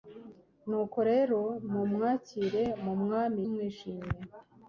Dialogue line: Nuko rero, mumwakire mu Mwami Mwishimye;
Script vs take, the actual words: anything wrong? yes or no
no